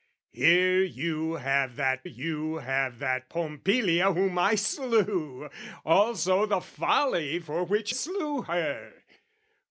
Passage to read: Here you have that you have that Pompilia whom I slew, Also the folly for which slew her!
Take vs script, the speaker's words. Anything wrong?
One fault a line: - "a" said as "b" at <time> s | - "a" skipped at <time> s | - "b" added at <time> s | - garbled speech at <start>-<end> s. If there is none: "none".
none